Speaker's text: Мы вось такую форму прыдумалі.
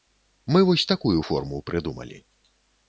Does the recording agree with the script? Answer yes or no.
yes